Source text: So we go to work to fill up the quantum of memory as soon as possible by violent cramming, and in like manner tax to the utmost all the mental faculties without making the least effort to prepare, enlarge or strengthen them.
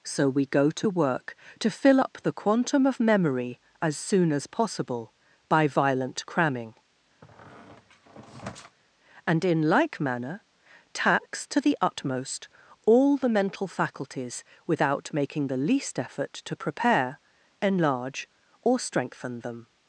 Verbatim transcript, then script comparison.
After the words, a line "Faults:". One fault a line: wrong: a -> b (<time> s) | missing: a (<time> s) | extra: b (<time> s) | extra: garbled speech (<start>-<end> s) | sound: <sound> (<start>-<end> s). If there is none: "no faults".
So we go to work to fill up the quantum of memory as soon as possible by violent cramming, and in like manner tax to the utmost all the mental faculties without making the least effort to prepare, enlarge or strengthen them.
Faults:
sound: squeak (7.2-8.8 s)